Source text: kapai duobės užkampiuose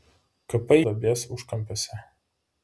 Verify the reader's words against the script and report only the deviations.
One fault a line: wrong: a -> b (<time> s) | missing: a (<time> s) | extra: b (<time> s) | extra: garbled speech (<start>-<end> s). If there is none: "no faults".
no faults